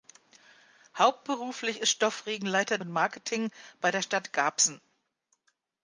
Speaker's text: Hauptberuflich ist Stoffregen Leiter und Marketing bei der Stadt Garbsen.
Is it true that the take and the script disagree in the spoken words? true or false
false